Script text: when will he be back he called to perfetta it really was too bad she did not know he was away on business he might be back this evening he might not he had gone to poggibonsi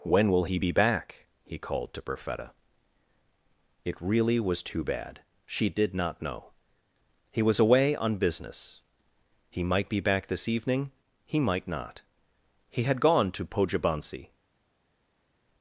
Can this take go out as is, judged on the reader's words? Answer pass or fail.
pass